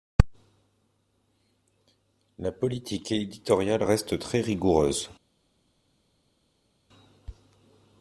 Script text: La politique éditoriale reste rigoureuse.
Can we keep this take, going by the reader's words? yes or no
no